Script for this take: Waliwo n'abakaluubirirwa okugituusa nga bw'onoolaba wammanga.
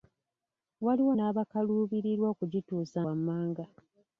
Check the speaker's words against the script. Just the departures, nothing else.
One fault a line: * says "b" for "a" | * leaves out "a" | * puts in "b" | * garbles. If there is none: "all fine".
* leaves out "nga bw'onoolaba"